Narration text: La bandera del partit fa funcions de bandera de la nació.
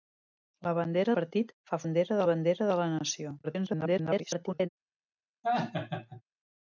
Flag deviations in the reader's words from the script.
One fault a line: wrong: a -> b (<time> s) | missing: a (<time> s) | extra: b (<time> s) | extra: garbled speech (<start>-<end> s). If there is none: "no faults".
missing: del (1.1 s)
wrong: funcions -> bandera (1.8 s)
extra: garbled speech (3.4-4.7 s)